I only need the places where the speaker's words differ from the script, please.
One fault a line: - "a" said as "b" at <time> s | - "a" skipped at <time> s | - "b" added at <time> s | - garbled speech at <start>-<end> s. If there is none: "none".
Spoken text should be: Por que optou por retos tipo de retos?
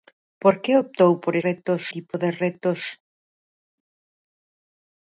none